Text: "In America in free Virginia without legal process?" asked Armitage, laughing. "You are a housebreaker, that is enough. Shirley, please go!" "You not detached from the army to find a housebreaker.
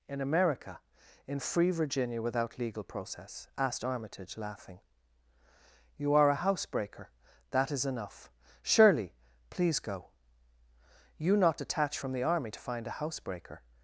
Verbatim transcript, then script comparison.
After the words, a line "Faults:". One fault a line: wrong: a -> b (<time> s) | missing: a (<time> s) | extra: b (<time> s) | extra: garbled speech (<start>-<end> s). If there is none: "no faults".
"In America in free Virginia without legal process?" asked Armitage, laughing. "You are a housebreaker, that is enough. Shirley, please go!" "You not detached from the army to find a housebreaker.
Faults:
no faults